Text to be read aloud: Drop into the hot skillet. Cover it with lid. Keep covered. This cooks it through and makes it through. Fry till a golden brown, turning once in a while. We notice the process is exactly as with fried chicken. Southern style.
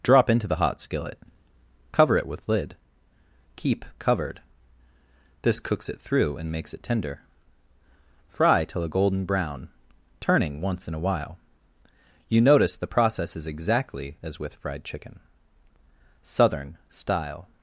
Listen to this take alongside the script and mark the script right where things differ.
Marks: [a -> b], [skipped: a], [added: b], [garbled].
Drop into the hot skillet. Cover it with lid. Keep covered. This cooks it through and makes it [through. -> tender] Fry till a golden brown, turning once in a while. [We -> You] notice the process is exactly as with fried chicken. Southern style.